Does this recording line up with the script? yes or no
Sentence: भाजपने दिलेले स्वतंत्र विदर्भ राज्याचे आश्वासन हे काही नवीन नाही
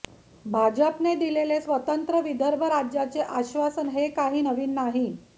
yes